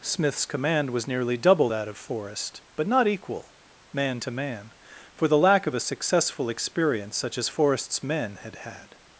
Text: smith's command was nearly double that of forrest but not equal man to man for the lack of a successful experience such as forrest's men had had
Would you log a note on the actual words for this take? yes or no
no